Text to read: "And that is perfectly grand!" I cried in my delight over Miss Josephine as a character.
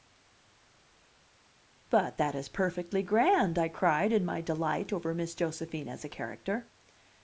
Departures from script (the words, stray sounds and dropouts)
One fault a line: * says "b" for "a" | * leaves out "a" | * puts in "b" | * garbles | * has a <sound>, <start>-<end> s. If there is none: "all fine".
* says "But" for "And"